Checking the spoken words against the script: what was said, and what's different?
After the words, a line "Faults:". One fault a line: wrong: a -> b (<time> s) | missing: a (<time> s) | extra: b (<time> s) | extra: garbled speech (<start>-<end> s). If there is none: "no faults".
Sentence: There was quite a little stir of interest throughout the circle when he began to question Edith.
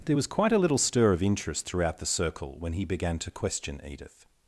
There was quite a little stir of interest throughout the circle when he began to question Edith.
Faults:
no faults